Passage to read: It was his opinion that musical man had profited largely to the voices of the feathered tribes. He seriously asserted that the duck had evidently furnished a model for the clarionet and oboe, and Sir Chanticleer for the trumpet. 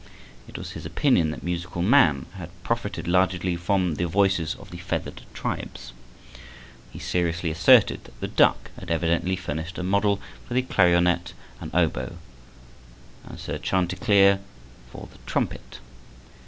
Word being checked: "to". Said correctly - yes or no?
no